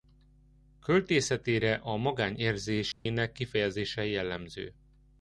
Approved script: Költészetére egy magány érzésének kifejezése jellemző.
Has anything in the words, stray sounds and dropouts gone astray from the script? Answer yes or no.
yes